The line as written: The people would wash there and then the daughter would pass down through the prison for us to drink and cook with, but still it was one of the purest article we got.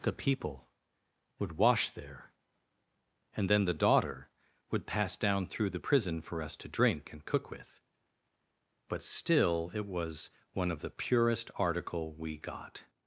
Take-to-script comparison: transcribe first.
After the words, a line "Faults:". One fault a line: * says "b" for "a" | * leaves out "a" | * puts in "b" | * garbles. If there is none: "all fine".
The people would wash there and then the daughter would pass down through the prison for us to drink and cook with, but still it was one of the purest article we got.
Faults:
all fine